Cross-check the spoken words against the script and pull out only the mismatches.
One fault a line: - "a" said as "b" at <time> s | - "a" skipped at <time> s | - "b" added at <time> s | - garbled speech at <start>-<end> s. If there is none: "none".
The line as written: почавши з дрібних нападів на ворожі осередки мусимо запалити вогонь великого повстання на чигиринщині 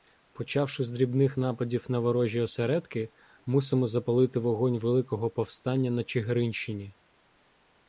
none